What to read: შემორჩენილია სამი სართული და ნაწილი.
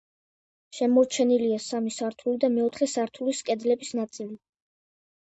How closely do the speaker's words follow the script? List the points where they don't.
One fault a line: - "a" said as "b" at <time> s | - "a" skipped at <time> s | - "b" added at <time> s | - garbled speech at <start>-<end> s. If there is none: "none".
- "მეოთხე სართულის კედლების" added at 2.5 s